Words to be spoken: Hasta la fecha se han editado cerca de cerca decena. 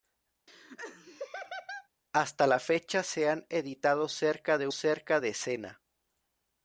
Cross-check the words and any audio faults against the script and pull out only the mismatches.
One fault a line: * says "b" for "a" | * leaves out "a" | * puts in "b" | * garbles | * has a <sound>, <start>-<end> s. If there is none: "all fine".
* has a laugh, 0.5-1.9 s